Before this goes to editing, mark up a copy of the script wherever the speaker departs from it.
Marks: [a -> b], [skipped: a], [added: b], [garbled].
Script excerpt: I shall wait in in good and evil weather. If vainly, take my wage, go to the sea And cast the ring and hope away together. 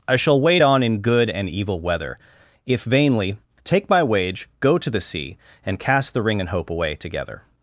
I shall wait [in -> on] in good and evil weather. If vainly, take my wage, go to the sea And cast the ring and hope away together.